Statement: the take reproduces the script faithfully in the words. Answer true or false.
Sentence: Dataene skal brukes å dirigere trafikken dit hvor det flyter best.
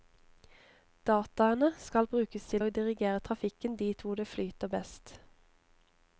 false